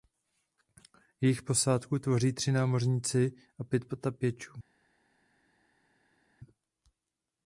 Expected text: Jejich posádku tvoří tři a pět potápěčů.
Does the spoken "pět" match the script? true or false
true